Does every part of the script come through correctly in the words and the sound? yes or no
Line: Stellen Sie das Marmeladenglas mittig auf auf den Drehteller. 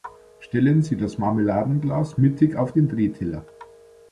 no